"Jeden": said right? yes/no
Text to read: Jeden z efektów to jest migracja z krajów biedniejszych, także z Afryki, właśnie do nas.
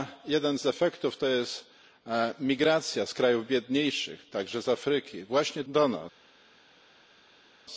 yes